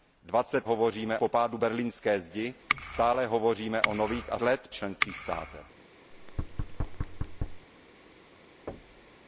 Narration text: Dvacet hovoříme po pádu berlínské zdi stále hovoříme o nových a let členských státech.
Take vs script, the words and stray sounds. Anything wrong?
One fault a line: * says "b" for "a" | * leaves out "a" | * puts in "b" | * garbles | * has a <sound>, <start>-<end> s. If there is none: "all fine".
* has a thud, 6.1-7.7 s
* has a thud, 8.7-9.2 s